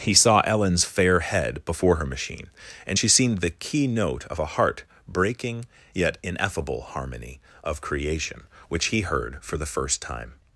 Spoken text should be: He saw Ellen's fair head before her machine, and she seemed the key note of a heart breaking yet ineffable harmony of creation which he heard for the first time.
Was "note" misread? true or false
false